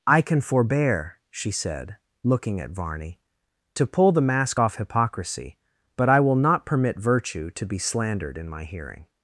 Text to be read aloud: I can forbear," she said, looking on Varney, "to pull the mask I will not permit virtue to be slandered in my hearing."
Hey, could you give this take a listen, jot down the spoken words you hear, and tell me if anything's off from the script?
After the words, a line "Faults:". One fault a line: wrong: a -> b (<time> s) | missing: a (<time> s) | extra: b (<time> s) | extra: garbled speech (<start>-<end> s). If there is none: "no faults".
I can forbear," she said, looking at Varney, "to pull the mask off hypocrisy, but I will not permit virtue to be slandered in my hearing."
Faults:
wrong: on -> at (2.6 s)
extra: off hypocrisy but (4.6 s)